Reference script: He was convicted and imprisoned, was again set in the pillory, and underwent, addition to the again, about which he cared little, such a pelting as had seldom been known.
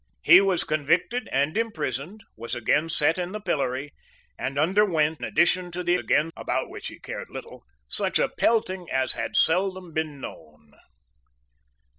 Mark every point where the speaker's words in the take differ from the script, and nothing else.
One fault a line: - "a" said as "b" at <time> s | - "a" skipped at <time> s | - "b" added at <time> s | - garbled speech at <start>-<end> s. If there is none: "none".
none